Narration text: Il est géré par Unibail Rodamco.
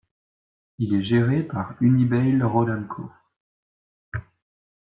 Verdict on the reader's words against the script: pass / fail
pass